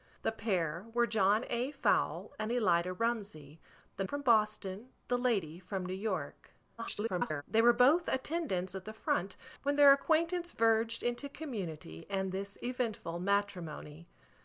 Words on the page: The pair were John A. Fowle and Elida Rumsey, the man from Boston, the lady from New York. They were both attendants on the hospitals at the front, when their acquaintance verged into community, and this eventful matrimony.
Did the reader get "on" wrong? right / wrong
wrong